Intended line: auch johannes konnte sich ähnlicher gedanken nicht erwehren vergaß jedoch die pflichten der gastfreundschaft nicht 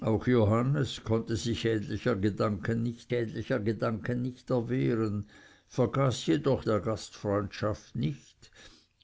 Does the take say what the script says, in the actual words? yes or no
no